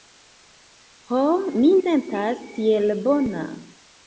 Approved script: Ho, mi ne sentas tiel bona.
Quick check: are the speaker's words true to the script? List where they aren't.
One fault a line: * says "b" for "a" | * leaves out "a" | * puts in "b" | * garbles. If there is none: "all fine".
* leaves out "ne"